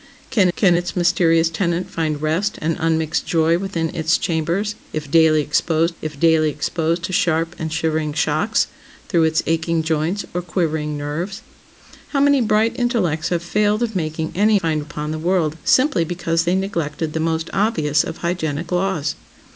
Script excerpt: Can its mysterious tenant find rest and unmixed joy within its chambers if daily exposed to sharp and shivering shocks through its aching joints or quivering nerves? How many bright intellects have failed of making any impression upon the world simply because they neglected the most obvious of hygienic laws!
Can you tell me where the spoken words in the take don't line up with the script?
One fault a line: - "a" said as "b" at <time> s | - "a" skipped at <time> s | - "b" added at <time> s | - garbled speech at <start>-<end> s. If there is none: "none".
- "can" added at 0.6 s
- "if daily exposed" added at 6.0 s
- "impression" said as "find" at 14.5 s